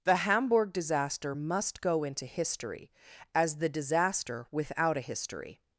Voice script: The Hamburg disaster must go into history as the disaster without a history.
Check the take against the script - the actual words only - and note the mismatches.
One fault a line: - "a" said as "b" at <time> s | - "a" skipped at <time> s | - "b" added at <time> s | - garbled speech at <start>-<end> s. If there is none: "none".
none